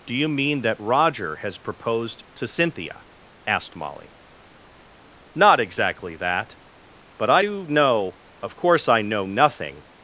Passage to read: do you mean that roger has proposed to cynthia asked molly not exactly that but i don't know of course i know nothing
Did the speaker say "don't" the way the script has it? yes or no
no